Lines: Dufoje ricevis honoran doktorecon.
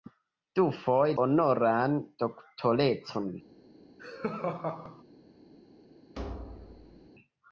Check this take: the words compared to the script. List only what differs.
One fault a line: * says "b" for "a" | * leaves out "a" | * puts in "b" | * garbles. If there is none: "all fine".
* leaves out "ricevis"